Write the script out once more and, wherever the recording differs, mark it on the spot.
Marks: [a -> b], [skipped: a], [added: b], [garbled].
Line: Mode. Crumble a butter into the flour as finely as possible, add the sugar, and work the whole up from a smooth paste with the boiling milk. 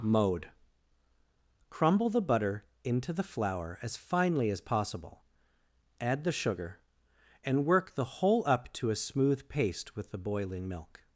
Mode. Crumble [a -> the] butter into the flour as finely as possible, add the sugar, and work the whole up [from -> to] a smooth paste with the boiling milk.